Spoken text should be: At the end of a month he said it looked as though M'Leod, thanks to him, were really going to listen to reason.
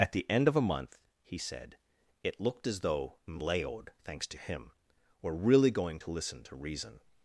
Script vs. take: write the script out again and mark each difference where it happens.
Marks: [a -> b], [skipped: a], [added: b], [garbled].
At the end of a month he said it looked as though M'Leod, thanks to him, were really going to listen to reason.